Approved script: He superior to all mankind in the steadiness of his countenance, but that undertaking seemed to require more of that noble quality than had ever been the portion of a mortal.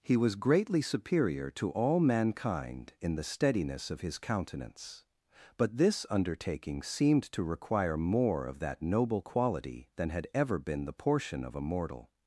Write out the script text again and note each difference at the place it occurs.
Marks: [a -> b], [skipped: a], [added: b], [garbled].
He [added: was greatly] superior to all mankind in the steadiness of his countenance, but [that -> this] undertaking seemed to require more of that noble quality than had ever been the portion of a mortal.